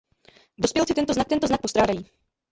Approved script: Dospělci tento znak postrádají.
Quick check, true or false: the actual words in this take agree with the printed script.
false